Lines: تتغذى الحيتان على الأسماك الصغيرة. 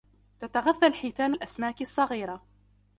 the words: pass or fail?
fail